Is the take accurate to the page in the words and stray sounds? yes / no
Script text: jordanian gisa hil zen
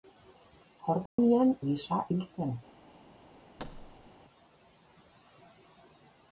no